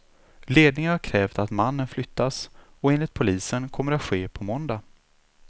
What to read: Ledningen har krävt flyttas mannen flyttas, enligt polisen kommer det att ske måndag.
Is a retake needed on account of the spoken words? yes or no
yes